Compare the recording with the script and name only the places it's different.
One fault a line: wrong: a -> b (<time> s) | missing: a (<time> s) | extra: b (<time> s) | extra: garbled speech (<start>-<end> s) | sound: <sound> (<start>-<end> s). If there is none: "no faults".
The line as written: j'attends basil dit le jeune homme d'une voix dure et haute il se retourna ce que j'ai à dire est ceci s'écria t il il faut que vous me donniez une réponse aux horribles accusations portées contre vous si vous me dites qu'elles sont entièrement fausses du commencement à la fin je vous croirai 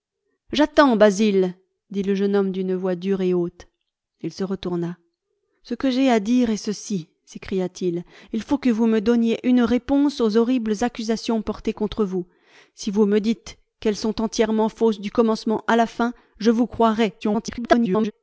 extra: garbled speech (17.2-18.1 s)